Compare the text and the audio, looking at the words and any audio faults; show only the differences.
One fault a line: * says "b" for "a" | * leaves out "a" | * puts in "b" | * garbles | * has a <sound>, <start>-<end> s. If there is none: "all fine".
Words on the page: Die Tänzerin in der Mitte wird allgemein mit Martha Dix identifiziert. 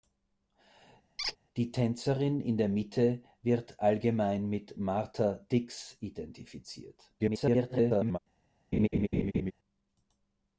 * has a squeak, 1.2-1.4 s
* garbles
* has a laugh, 8.7-9.5 s